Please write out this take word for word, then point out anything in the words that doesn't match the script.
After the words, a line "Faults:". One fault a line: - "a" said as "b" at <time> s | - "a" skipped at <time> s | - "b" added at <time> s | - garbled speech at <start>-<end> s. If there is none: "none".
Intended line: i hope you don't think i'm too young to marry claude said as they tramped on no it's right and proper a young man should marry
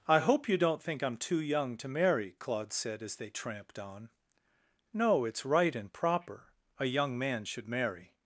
i hope you don't think i'm too young to marry claude said as they tramped on no it's right and proper a young man should marry
Faults:
none